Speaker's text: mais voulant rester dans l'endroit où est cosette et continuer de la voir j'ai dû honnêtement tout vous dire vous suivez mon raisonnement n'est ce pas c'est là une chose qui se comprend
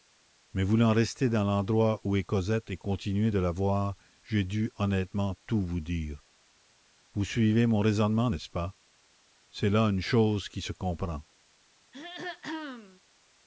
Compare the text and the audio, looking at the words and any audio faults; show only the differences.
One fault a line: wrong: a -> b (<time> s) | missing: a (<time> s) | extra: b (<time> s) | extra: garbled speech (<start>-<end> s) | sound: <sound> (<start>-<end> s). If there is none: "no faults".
sound: throat clearing (11.9-13.0 s)